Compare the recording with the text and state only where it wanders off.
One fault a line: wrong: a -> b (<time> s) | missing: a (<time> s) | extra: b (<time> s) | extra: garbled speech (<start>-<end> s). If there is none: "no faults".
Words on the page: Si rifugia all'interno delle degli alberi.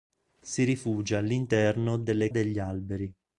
no faults